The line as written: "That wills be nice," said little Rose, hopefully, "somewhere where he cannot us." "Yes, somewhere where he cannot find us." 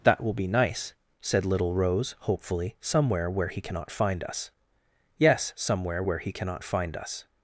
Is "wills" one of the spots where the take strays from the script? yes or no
yes